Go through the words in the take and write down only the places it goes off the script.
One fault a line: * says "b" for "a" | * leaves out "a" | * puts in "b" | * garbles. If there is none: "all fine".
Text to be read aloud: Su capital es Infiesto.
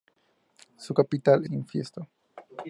* leaves out "es"